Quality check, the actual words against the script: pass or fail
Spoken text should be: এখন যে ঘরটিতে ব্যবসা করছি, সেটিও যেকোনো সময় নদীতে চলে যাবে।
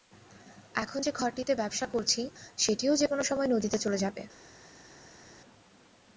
pass